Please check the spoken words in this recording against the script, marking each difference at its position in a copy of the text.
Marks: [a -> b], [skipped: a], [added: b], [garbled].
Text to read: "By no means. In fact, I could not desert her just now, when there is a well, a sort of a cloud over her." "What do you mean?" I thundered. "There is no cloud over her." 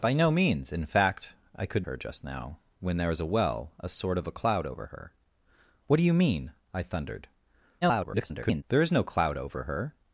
"By no means. In fact, I could [skipped: not desert] her just now, when there is a well, a sort of a cloud over her." "What do you mean?" I thundered. [garbled] "There is no cloud over her."